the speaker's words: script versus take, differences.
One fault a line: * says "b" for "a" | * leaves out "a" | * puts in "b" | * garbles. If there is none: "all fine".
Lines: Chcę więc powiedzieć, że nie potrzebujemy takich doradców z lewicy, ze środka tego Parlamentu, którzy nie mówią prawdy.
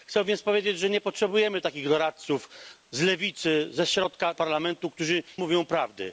* leaves out "tego"
* leaves out "nie"